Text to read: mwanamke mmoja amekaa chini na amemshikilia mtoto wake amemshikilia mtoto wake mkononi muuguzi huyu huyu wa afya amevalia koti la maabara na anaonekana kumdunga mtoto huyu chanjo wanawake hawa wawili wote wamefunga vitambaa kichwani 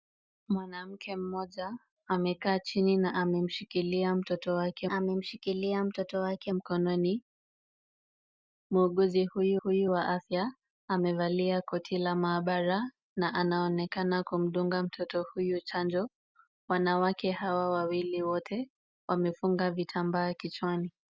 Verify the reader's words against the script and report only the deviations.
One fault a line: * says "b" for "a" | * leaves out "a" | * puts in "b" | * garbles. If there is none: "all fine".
all fine